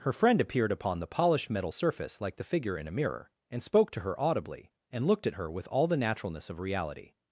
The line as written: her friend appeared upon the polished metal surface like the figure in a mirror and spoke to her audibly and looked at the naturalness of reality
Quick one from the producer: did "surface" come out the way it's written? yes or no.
yes